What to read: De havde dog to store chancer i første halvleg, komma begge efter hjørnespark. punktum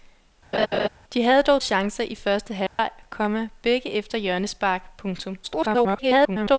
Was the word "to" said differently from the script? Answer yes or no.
yes